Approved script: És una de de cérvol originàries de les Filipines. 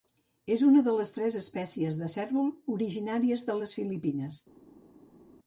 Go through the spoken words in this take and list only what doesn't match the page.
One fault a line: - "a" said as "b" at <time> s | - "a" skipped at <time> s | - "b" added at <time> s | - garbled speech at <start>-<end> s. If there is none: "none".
- "les tres espècies" added at 1.0 s